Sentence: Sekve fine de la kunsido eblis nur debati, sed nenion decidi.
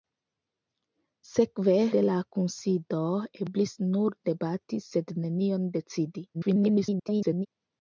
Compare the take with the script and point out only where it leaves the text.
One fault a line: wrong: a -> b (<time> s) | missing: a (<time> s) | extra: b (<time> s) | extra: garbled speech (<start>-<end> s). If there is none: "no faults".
missing: fine (1.8 s)
extra: garbled speech (6.3-7.5 s)